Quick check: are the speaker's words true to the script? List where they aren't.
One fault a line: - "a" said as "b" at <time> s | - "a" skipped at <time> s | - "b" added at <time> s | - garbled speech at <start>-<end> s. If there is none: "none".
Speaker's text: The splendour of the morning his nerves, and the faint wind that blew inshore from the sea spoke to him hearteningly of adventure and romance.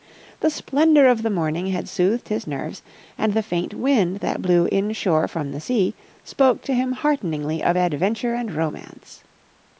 - "had soothed" added at 1.7 s